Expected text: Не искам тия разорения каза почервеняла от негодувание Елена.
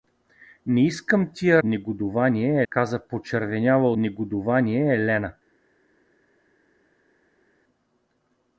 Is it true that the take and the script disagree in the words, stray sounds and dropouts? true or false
true